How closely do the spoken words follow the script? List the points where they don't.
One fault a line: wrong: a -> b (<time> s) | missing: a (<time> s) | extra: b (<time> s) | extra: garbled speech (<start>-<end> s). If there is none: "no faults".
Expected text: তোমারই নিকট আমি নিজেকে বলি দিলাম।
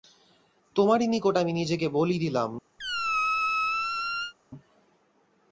no faults